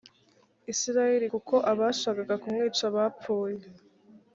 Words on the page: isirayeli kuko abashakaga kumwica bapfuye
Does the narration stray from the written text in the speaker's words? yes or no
no